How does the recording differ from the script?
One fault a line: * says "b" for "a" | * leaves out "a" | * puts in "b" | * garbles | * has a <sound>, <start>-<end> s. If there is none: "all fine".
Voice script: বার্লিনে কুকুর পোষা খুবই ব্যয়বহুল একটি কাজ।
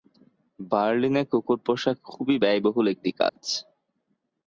* has a dropout, 3.3-3.4 s